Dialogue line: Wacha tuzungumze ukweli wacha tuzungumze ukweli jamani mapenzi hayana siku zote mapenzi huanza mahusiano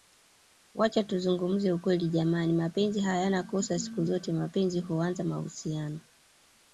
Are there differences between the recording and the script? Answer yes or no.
yes